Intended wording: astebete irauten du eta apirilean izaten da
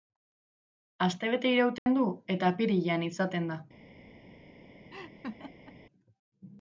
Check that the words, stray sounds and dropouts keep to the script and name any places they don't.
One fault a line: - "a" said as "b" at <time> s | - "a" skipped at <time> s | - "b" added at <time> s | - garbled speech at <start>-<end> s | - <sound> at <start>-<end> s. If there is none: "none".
- dropout at 1.8-1.9 s
- laugh at 4.9-5.8 s